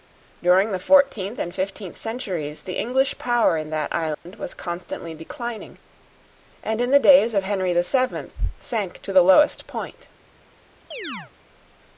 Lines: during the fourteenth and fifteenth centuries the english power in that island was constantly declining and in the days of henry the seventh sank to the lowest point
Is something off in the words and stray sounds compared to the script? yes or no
yes